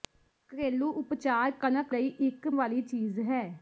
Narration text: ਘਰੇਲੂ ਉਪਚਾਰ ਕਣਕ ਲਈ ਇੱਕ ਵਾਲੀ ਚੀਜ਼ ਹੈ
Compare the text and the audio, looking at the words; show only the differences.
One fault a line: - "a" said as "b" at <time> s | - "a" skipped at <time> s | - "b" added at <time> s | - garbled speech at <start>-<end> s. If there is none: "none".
none